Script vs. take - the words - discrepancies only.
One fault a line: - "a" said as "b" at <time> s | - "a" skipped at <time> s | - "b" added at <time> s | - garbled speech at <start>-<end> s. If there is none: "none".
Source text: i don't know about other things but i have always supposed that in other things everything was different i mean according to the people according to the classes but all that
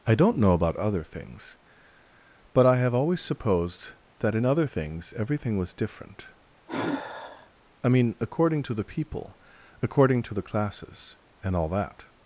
- "but" said as "and" at 11.4 s